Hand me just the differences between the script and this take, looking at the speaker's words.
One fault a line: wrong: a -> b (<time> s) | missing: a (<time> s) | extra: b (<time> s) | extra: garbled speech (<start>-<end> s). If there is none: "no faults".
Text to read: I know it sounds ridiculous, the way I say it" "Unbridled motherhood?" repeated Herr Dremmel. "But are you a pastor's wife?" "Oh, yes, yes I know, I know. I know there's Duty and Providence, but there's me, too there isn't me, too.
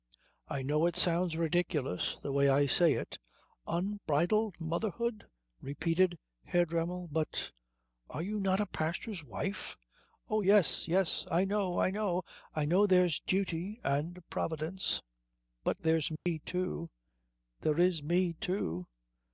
extra: not (8.4 s)
wrong: isn't -> is (17.8 s)